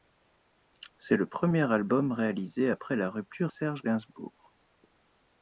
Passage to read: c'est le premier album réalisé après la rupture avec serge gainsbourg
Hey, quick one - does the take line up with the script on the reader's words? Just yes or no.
no